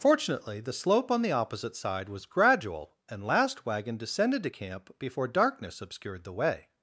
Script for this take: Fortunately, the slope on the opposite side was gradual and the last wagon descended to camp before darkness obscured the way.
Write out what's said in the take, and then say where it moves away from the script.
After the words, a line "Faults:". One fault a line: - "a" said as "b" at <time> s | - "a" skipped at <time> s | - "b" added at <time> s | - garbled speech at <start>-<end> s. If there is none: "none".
Fortunately, the slope on the opposite side was gradual and last wagon descended to camp before darkness obscured the way.
Faults:
- "the" skipped at 3.2 s